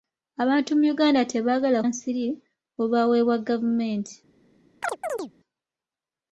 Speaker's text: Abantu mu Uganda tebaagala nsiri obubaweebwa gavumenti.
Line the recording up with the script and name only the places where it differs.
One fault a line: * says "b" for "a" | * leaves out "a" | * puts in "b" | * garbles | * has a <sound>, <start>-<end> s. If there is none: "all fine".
* has a chirp, 4.8-5.3 s